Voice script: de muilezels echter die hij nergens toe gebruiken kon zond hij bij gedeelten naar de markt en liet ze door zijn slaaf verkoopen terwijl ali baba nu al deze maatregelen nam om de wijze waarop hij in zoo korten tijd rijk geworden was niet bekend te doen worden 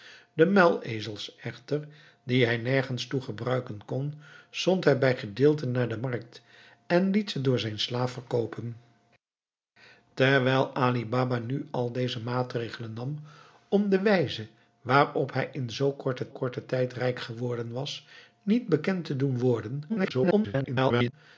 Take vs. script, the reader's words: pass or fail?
fail